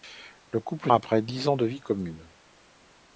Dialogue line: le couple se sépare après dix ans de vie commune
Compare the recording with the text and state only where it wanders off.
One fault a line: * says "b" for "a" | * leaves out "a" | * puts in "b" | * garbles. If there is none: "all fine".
* leaves out "se sépare"